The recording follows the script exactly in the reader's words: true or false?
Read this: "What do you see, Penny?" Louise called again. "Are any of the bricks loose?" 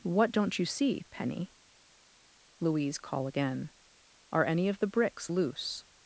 false